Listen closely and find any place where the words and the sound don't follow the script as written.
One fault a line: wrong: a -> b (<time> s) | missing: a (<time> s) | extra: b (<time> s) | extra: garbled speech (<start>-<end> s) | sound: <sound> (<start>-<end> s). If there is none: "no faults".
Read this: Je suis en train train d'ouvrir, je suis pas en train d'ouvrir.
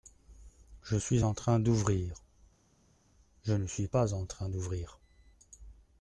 missing: train (1.6 s)
extra: ne (3.5 s)